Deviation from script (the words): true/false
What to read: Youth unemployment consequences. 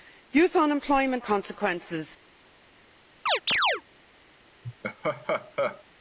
false